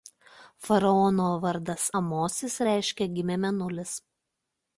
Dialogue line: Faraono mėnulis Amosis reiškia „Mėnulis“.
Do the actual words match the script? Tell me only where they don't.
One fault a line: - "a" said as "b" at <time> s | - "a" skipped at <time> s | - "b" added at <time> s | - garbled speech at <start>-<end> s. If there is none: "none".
- "mėnulis" said as "vardas" at 1.4 s
- "Gimė" added at 3.2 s